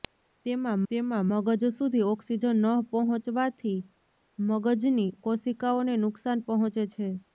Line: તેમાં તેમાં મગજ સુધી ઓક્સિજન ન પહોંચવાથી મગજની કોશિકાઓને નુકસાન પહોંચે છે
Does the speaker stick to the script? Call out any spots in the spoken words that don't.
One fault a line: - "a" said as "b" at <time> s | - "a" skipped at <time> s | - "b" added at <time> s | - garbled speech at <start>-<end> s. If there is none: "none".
none